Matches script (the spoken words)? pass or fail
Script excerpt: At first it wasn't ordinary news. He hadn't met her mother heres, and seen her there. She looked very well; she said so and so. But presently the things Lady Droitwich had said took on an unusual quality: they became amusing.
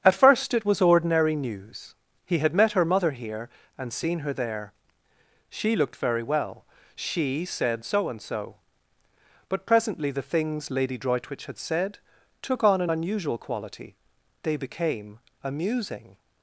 fail